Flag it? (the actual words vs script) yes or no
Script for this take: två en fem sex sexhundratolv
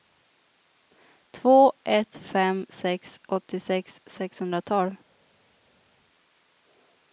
yes